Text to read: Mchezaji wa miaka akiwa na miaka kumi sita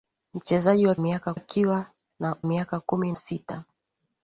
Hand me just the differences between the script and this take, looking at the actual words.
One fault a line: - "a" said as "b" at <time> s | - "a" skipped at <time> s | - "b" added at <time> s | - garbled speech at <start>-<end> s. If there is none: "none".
none